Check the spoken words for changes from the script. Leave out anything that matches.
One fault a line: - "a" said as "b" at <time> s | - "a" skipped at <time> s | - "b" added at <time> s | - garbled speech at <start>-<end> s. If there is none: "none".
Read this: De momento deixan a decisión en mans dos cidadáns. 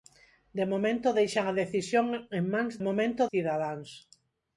- "dos" said as "momento" at 2.9 s